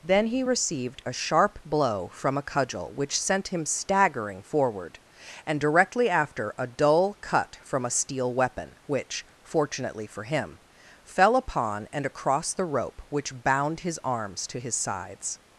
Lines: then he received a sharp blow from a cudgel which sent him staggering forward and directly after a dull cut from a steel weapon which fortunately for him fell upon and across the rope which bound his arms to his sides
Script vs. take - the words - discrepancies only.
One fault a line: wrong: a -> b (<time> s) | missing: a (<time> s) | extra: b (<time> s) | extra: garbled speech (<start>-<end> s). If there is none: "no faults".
no faults